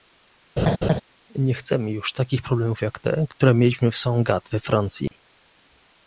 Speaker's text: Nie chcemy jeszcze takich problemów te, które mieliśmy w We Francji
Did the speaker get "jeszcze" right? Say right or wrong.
wrong